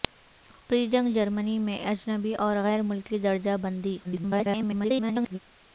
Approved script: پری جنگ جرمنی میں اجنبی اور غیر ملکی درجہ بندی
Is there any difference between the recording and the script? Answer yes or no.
yes